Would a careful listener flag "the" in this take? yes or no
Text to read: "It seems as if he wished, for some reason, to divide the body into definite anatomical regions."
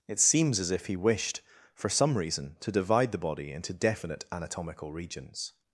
no